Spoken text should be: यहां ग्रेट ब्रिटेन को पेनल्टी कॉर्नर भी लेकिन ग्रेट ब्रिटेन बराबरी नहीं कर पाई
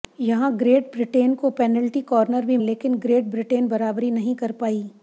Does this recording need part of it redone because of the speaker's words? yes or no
no